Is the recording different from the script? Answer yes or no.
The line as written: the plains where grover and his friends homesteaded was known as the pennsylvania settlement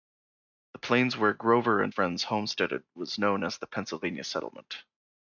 yes